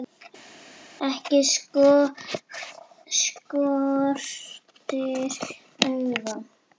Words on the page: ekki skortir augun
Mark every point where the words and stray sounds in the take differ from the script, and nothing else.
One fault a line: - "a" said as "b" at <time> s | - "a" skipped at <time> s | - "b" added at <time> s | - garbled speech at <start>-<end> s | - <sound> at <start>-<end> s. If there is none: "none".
none